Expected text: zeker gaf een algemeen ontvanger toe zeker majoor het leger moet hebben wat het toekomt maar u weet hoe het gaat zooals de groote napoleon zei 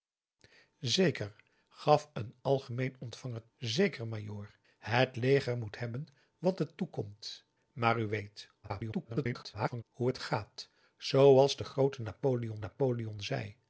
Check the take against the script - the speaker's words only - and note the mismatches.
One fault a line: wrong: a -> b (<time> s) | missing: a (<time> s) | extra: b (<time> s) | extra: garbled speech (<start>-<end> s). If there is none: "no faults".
missing: toe (3.5 s)
extra: garbled speech (8.6-9.8 s)
extra: napoleon (12.6 s)